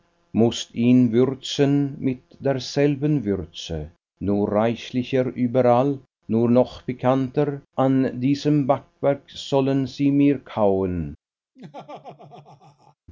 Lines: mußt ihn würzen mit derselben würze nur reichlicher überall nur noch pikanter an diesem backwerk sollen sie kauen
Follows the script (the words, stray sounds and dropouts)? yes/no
no